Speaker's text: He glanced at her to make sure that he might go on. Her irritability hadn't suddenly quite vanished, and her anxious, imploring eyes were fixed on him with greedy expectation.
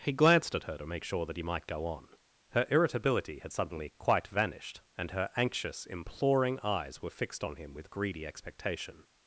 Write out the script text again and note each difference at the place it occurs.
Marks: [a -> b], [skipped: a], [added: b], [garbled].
He glanced at her to make sure that he might go on. Her irritability [hadn't -> had] suddenly quite vanished, and her anxious, imploring eyes were fixed on him with greedy expectation.